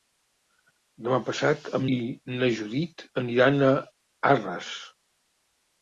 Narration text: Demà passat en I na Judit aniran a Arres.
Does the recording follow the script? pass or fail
pass